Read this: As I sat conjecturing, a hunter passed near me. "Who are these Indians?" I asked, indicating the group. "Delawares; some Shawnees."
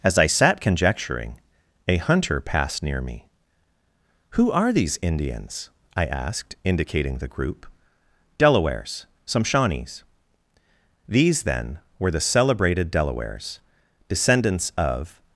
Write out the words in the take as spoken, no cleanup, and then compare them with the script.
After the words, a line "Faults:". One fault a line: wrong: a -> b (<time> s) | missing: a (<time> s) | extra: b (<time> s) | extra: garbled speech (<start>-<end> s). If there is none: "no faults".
As I sat conjecturing, a hunter passed near me. "Who are these Indians?" I asked, indicating the group. "Delawares; some Shawnees." These, then, were the celebrated Delawares, descendants of
Faults:
extra: These then were the celebrated Delawares descendants of (11.1 s)